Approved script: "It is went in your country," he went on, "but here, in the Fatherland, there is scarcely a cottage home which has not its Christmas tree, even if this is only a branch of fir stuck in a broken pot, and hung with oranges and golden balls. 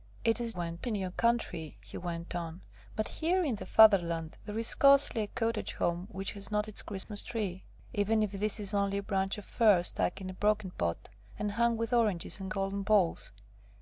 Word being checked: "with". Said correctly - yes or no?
yes